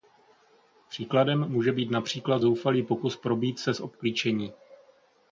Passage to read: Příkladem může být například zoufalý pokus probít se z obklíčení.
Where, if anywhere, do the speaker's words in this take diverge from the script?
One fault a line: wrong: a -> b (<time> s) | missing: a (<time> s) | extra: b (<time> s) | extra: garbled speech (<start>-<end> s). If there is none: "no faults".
no faults